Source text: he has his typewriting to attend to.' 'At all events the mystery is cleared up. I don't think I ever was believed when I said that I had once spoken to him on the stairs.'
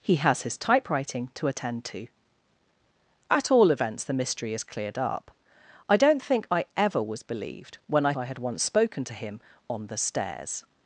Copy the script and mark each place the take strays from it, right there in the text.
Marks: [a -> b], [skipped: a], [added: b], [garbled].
he has his typewriting to attend to.' 'At all events the mystery is cleared up. I don't think I ever was believed when I [skipped: said that] I had once spoken to him on the stairs.'